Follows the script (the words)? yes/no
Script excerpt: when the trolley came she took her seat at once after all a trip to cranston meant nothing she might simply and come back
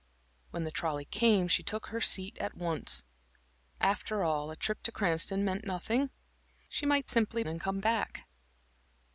yes